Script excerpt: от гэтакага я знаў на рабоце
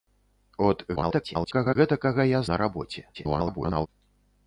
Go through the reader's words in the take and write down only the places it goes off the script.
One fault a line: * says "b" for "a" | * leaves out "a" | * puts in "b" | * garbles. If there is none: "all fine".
* garbles
* leaves out "знаў"
* garbles